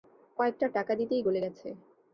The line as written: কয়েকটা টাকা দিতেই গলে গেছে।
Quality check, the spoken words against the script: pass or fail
pass